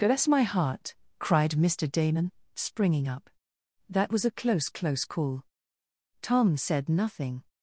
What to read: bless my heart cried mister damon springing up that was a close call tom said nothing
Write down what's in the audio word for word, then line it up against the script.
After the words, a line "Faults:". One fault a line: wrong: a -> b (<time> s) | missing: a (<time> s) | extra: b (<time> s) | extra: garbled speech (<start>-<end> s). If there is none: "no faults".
bless my heart cried mister damon springing up that was a close close call tom said nothing
Faults:
extra: close (4.7 s)